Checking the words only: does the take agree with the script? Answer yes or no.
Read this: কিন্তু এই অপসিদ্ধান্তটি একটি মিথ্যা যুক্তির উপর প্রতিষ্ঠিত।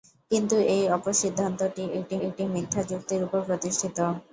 no